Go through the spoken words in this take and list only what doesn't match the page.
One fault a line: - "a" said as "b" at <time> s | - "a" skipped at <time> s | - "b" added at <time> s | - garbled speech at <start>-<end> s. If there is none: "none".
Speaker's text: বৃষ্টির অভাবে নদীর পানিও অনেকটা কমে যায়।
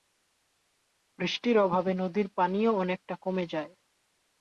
none